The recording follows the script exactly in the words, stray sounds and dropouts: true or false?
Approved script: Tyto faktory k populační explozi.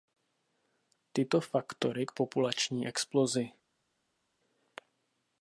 true